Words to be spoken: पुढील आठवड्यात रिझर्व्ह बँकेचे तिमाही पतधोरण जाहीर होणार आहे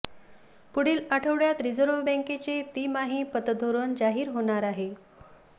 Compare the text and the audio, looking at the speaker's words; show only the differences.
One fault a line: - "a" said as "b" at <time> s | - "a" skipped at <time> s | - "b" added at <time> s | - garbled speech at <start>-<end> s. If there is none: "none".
none